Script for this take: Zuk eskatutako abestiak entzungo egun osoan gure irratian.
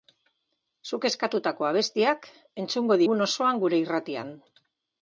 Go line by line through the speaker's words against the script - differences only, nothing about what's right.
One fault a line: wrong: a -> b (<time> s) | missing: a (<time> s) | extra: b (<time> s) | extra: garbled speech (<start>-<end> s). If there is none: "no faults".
no faults